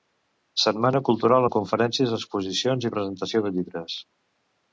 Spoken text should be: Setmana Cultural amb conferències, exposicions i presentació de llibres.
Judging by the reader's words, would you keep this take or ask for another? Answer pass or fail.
pass